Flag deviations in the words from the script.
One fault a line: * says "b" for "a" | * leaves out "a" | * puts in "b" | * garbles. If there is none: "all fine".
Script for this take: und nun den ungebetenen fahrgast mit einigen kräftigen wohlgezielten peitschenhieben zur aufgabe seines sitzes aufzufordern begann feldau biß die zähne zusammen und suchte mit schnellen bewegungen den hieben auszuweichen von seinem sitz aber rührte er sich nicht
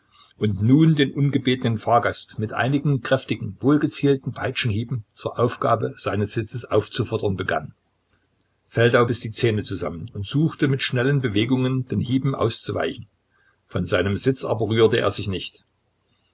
all fine